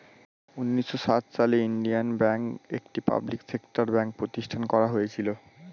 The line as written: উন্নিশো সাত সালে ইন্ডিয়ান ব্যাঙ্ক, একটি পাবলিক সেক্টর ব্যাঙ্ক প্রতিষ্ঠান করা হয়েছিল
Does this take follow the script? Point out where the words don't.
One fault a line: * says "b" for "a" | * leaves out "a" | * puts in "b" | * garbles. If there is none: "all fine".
all fine